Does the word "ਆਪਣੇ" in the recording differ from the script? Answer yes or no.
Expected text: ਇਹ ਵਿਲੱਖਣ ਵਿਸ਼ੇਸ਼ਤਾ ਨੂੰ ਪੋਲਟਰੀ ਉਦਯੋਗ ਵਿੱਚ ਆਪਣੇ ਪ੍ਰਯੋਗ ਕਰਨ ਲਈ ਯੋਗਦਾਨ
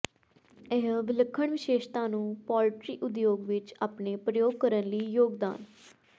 no